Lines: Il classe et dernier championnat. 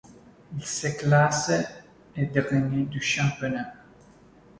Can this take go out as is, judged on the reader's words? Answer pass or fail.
fail